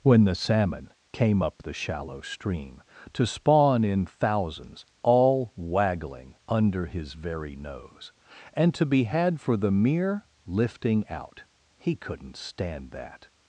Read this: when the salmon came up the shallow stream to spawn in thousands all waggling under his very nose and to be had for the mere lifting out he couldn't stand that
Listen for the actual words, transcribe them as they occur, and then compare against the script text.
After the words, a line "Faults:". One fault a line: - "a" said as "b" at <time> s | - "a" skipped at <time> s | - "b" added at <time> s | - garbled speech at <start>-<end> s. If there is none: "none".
when the salmon came up the shallow stream to spawn in thousands all waggling under his very nose and to be had for the mere lifting out he couldn't stand that
Faults:
none